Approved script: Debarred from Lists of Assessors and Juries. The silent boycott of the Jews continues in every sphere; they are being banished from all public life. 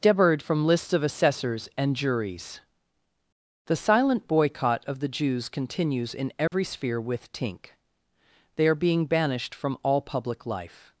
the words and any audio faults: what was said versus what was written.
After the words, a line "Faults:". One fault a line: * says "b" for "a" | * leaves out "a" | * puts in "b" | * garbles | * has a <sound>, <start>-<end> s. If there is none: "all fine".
Debarred from Lists of Assessors and Juries. The silent boycott of the Jews continues in every sphere; with tink they are being banished from all public life.
Faults:
* has a dropout, 6.5-6.5 s
* puts in "with tink"